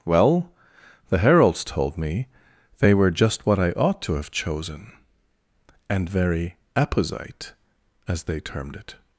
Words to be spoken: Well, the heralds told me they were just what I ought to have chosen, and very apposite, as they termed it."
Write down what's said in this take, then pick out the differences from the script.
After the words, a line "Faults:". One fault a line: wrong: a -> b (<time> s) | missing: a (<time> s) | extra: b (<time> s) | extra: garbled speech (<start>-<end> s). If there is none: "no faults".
Well, the heralds told me they were just what I ought to have chosen, and very apposite, as they termed it."
Faults:
no faults